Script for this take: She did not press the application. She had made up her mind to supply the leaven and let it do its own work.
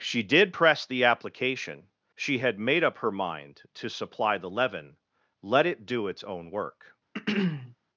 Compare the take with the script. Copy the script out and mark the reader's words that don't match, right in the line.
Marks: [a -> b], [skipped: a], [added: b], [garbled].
She did [skipped: not] press the application. She had made up her mind to supply the leaven [skipped: and] let it do its own work.